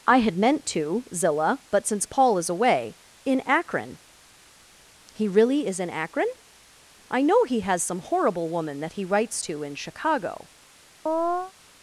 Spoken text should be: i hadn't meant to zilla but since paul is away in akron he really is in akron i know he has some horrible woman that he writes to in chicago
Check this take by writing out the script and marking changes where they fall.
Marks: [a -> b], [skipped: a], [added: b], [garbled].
i [hadn't -> had] meant to zilla but since paul is away in akron he really is in akron i know he has some horrible woman that he writes to in chicago